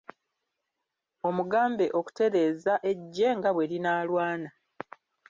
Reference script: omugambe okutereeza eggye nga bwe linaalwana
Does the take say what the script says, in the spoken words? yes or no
yes